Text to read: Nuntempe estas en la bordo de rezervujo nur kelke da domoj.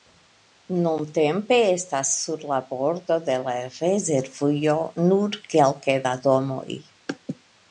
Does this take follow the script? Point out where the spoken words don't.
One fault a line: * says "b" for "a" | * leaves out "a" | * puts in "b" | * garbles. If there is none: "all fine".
* says "sur" for "en"
* puts in "la"